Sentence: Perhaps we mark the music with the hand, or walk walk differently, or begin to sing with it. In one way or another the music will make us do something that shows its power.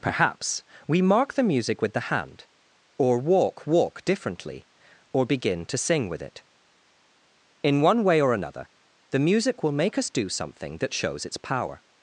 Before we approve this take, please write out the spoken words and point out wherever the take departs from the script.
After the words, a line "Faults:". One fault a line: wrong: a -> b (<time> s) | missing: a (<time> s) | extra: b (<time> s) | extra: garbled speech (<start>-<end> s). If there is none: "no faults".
Perhaps we mark the music with the hand, or walk walk differently, or begin to sing with it. In one way or another the music will make us do something that shows its power.
Faults:
no faults